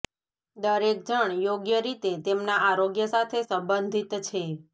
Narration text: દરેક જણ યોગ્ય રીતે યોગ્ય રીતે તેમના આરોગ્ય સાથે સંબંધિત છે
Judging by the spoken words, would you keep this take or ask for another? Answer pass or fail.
fail